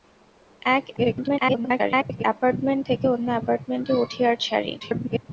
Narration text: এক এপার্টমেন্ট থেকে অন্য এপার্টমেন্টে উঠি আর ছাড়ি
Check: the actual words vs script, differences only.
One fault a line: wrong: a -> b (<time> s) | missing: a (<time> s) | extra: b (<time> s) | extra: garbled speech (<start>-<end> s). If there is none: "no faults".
extra: garbled speech (1.0-2.2 s)
extra: garbled speech (4.8-5.3 s)